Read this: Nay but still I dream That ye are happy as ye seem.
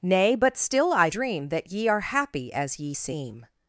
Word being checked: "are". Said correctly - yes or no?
yes